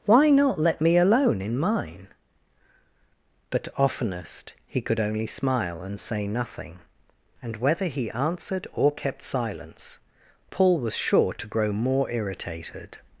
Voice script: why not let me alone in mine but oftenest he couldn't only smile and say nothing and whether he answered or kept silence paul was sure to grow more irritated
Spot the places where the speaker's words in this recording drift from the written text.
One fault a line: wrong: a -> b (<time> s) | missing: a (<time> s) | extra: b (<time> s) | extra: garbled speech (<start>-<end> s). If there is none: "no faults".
wrong: couldn't -> could (4.8 s)